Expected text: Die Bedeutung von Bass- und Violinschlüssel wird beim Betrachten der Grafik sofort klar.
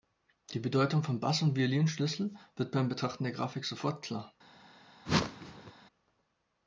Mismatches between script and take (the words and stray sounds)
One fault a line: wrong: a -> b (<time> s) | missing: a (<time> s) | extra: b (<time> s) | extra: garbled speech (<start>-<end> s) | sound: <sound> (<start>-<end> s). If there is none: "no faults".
sound: whoosh (5.1-5.7 s)